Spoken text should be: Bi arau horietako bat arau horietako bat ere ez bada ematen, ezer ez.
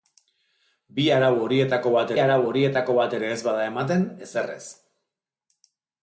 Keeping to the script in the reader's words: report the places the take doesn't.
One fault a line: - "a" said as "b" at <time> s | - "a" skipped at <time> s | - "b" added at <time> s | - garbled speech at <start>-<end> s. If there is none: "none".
none